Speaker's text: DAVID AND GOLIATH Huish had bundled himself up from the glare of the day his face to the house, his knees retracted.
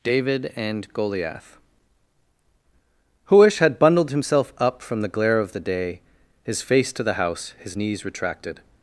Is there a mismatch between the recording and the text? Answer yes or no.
no